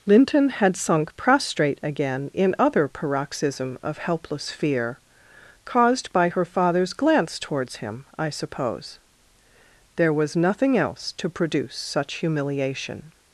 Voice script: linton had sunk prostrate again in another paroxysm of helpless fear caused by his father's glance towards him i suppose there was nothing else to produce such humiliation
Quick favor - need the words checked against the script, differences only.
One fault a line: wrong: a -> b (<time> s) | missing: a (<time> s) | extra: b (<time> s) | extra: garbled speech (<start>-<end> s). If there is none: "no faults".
wrong: another -> other (2.6 s)
wrong: his -> her (6.3 s)